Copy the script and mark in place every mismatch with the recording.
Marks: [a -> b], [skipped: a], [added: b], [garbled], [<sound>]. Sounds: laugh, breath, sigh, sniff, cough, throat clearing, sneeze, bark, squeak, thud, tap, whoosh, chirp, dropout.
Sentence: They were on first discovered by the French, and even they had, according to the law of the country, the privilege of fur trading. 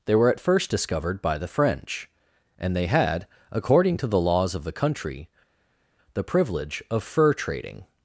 They were [on -> at] first discovered by the French, and [skipped: even] they had, according to the [law -> laws] of the country, the privilege of fur trading.